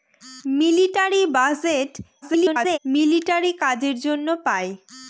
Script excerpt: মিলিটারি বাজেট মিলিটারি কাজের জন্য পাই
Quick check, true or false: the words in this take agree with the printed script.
false